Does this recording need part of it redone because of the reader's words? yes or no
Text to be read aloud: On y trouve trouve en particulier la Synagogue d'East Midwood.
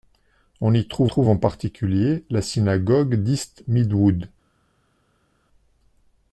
no